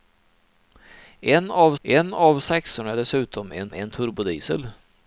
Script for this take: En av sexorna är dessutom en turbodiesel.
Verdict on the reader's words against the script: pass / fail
fail